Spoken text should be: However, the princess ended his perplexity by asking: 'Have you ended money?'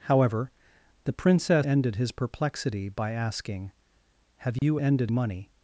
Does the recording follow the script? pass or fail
pass